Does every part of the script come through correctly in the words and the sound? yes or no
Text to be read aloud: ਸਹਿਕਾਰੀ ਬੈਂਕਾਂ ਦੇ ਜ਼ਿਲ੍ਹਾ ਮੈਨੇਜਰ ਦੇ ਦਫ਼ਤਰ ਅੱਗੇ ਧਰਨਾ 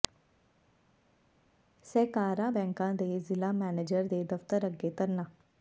yes